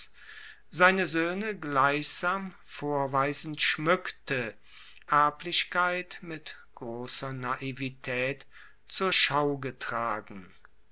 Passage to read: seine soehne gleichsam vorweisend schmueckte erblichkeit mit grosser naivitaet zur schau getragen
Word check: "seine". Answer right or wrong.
right